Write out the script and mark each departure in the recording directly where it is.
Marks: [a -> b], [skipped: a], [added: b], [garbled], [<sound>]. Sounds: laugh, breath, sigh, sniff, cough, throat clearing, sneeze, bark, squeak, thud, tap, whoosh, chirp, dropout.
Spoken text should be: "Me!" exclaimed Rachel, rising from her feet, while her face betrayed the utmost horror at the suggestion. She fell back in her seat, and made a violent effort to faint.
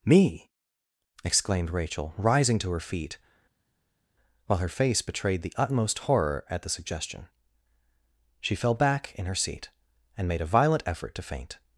"Me!" exclaimed Rachel, rising [from -> to] her feet, while her face betrayed the utmost horror at the suggestion. She fell back in her seat, and made a violent effort to faint.